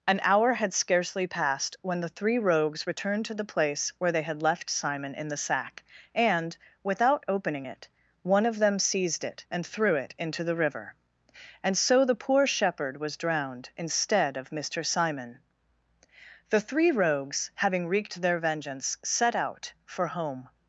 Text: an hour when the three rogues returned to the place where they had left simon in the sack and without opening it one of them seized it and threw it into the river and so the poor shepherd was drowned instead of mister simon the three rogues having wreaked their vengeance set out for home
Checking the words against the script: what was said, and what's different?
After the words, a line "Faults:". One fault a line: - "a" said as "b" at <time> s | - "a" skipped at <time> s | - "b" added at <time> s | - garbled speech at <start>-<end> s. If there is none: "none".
an hour had scarcely passed when the three rogues returned to the place where they had left simon in the sack and without opening it one of them seized it and threw it into the river and so the poor shepherd was drowned instead of mister simon the three rogues having wreaked their vengeance set out for home
Faults:
- "had scarcely passed" added at 0.5 s